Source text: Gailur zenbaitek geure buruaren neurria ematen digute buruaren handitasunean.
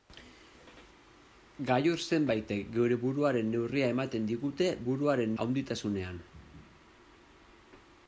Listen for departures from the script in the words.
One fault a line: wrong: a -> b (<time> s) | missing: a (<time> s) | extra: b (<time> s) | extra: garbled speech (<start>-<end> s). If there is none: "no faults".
no faults